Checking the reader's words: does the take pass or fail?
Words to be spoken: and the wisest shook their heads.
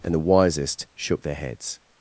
pass